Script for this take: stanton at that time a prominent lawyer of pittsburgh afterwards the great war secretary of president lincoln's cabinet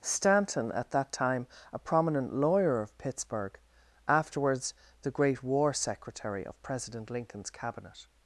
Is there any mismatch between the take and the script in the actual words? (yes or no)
no